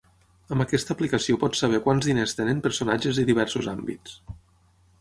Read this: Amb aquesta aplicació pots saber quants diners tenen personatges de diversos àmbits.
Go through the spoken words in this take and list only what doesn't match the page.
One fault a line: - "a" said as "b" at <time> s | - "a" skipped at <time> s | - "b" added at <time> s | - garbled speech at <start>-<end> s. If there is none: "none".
none